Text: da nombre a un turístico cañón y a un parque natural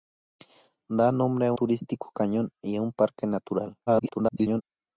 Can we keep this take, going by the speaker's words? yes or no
no